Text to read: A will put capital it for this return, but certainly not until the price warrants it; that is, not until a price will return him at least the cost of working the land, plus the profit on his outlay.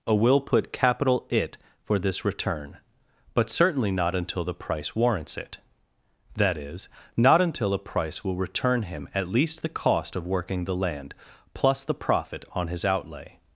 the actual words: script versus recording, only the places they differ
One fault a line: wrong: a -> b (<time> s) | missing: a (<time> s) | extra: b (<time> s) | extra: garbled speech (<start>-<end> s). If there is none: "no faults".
no faults